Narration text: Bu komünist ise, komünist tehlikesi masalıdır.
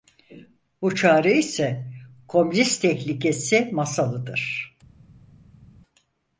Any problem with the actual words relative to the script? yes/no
yes